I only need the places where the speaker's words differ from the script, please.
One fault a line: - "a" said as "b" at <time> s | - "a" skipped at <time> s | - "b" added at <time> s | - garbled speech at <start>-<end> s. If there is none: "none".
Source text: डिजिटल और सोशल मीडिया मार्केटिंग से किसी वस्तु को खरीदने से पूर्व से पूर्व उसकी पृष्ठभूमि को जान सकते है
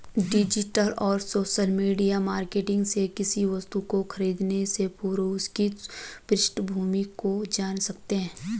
- "से पूर्व" skipped at 5.2 s